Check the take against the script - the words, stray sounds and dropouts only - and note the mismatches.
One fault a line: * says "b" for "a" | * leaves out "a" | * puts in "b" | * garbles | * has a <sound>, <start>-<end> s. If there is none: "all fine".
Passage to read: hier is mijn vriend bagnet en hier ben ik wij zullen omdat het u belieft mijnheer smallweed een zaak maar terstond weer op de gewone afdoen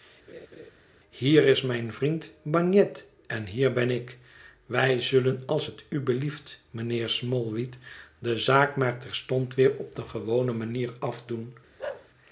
* has a laugh, 0.3-0.7 s
* says "als" for "omdat"
* says "de" for "een"
* puts in "manier"
* has a bark, 11.8-12.1 s